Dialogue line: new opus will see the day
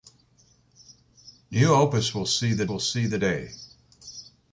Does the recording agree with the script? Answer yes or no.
no